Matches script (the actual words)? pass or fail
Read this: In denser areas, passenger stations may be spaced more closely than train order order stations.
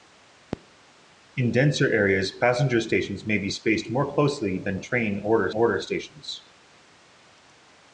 pass